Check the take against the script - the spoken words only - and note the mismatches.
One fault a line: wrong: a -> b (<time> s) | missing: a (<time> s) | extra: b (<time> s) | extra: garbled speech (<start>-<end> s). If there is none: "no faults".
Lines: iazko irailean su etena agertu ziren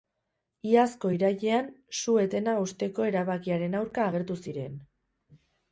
extra: hausteko erabakiaren aurka (2.6 s)